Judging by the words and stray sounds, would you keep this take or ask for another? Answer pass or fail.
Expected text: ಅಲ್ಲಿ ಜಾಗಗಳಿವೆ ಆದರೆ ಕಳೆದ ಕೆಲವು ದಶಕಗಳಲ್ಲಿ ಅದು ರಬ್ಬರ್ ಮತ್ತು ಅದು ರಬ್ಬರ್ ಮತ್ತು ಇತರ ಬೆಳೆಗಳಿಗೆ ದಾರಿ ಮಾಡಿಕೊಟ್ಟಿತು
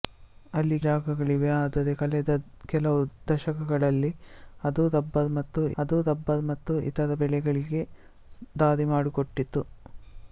pass